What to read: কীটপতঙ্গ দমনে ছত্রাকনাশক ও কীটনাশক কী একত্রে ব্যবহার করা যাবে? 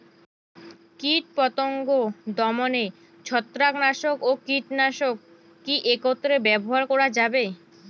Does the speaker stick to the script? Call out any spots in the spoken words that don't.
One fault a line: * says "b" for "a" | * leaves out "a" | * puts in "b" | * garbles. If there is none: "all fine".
all fine